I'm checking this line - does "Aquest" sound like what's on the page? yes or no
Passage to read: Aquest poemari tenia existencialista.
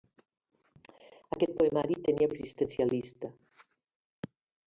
yes